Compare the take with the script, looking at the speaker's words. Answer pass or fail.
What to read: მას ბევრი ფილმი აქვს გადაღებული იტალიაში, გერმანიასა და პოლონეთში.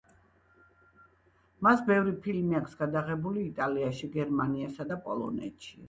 pass